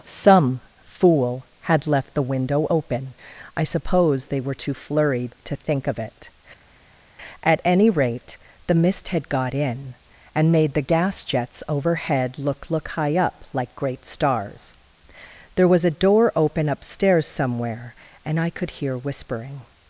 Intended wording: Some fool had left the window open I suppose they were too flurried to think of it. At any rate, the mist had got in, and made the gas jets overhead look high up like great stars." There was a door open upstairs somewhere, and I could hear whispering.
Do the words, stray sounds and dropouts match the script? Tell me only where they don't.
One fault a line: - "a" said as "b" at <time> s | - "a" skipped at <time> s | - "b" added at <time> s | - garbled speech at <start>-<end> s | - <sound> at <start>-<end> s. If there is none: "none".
- "look" added at 12.7 s